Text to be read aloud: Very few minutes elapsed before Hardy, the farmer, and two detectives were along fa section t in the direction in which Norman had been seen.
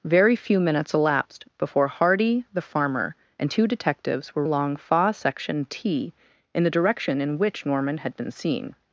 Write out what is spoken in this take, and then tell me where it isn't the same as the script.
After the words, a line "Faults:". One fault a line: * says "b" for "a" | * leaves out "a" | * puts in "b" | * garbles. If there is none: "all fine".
Very few minutes elapsed before Hardy, the farmer, and two detectives were along fa section t in the direction in which Norman had been seen.
Faults:
all fine